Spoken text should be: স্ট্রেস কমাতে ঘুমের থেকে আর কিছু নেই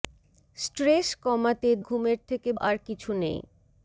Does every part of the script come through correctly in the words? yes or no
yes